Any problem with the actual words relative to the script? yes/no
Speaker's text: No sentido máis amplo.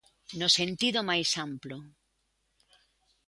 no